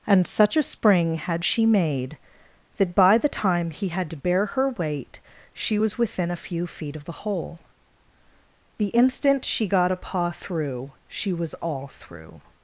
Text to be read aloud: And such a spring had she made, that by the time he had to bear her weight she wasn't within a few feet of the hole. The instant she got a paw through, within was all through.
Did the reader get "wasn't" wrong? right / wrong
wrong